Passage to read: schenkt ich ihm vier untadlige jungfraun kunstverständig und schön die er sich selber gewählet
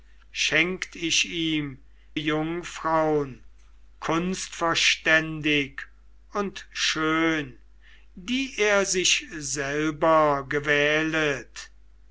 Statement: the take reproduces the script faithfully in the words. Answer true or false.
false